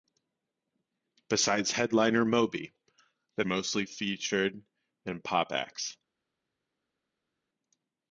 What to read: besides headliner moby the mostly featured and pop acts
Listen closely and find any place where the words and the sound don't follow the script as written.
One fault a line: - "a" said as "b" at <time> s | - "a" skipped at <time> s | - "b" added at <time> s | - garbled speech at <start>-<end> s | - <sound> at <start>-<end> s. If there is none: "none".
none